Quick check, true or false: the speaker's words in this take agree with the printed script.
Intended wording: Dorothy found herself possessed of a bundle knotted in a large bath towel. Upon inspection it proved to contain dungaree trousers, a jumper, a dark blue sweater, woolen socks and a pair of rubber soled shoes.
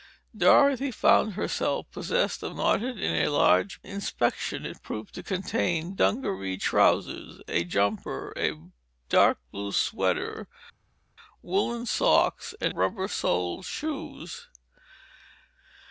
false